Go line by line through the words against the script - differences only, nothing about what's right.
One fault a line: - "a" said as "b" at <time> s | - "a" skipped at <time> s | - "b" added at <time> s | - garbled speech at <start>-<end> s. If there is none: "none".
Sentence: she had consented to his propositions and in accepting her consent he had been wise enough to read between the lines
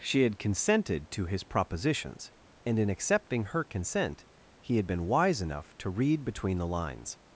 none